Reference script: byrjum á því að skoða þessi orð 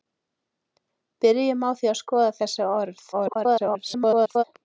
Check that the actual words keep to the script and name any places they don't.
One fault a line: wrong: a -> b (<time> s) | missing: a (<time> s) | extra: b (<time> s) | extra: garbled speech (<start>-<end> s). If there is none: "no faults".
extra: garbled speech (3.1-4.4 s)